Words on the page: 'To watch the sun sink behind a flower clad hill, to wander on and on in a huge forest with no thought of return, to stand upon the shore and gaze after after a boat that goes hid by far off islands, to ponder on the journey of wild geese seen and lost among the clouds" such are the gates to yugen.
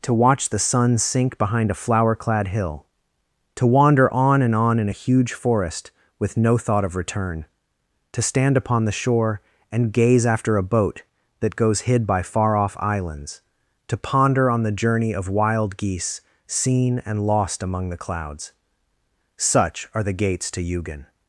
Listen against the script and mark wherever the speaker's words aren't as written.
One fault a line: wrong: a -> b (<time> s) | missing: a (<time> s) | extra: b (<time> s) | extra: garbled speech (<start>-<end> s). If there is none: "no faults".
missing: after (10.6 s)